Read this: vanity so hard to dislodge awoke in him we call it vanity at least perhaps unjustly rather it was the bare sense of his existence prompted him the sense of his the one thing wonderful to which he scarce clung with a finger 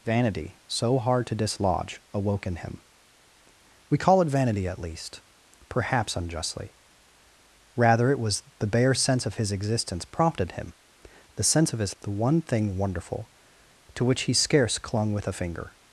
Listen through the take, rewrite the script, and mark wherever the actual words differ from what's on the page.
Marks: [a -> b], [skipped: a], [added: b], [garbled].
vanity so hard to dislodge awoke in him we call it vanity at least perhaps unjustly rather it was the bare sense of his existence prompted him the sense of his the one thing wonderful to which he scarce clung with a finger